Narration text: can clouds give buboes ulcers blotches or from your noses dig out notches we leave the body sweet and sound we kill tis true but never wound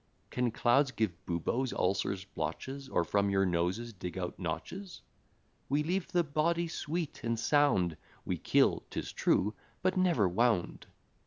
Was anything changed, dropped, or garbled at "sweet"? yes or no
no